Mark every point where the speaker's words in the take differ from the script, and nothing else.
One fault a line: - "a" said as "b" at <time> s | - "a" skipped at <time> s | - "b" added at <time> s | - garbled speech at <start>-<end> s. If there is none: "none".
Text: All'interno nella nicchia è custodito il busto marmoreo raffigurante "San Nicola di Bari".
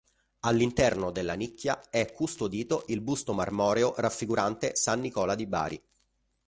- "nella" said as "della" at 1.1 s